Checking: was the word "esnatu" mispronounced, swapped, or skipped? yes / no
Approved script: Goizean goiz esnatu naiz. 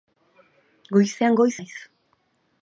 yes